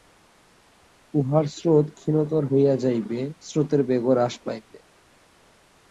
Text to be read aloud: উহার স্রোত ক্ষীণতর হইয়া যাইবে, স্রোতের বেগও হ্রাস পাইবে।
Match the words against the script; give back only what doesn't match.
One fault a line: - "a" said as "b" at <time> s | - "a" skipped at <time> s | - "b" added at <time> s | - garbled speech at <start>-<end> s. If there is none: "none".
none